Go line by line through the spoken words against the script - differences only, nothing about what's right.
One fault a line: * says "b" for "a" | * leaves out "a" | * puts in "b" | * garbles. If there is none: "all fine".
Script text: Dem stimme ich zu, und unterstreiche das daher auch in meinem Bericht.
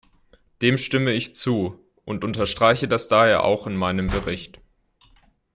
all fine